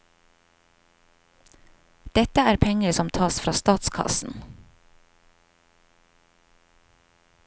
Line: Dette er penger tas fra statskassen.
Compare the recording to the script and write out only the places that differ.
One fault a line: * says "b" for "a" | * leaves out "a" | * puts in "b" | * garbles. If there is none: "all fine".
* puts in "som"